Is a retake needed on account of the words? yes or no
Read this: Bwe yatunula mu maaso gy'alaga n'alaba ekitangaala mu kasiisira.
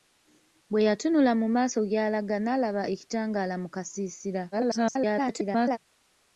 yes